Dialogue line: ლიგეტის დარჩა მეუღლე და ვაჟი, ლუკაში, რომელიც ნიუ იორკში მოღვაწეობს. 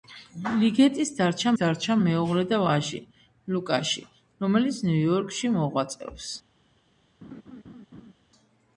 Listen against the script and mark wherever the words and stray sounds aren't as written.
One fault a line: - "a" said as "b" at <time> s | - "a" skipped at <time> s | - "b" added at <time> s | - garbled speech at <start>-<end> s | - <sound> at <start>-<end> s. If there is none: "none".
- "დარჩა" added at 1.6 s
- laugh at 7.2-8.1 s